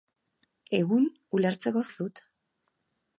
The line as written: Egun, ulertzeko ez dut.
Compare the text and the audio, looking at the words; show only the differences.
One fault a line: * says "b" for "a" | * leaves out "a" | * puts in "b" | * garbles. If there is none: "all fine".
all fine